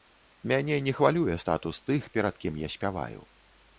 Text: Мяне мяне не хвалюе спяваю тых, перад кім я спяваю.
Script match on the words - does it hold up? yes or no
no